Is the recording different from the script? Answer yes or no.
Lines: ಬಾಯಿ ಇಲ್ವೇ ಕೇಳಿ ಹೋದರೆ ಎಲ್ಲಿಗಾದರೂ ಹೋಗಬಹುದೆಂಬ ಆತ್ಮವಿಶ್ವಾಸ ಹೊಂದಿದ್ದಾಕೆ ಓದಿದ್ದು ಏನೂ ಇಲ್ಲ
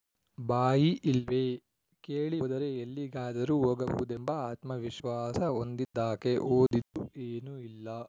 no